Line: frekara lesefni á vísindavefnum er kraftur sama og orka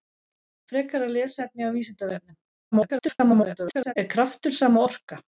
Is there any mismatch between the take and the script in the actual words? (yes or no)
yes